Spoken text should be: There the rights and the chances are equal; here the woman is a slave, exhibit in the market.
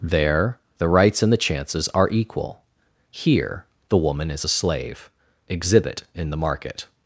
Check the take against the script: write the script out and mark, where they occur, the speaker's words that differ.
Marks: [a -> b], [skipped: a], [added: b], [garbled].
There the rights and the chances are equal; here the woman is a slave, exhibit in the market.